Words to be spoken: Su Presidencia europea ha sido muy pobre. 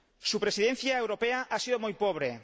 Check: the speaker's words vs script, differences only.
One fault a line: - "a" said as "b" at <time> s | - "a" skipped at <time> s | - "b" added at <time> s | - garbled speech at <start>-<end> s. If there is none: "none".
none